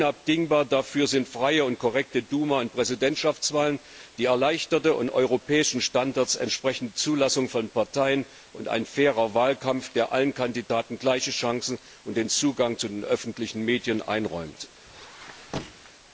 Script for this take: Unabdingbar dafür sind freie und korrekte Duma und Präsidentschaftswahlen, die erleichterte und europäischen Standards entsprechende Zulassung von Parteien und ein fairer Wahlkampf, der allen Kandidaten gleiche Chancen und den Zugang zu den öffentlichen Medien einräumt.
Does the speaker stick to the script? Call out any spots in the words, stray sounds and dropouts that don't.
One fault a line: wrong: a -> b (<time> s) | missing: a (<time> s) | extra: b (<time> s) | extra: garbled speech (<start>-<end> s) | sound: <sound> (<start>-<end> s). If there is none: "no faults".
sound: squeak (14.8-15.9 s)